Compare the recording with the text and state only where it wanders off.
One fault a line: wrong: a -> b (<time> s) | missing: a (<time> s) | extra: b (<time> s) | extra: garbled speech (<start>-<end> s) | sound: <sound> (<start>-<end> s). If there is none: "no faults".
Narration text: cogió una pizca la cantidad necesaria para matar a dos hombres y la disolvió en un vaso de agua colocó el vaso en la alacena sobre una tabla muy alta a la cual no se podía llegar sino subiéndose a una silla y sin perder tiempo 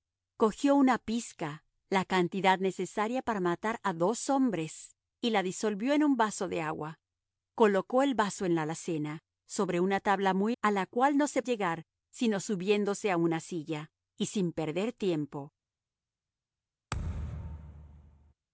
missing: alta (10.6 s)
missing: podía (11.4 s)
sound: thud (16.9-18.3 s)